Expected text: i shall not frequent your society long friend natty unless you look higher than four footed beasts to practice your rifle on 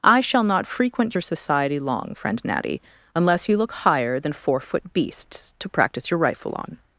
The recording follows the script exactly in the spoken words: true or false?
false